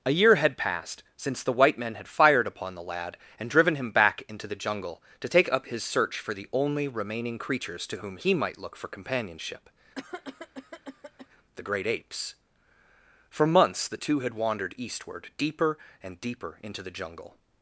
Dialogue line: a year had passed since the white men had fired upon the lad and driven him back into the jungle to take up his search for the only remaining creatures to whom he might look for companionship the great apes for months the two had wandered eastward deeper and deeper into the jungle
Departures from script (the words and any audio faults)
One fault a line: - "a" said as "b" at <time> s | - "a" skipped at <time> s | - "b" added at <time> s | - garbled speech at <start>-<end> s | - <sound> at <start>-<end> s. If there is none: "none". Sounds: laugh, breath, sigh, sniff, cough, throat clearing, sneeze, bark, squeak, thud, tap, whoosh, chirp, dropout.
- cough at 10.0-11.3 s